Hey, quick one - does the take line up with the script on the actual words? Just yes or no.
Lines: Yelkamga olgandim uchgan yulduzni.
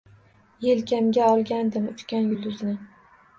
yes